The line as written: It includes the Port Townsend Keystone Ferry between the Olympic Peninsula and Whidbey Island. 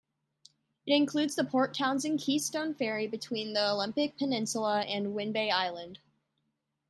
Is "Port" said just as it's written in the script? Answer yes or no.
yes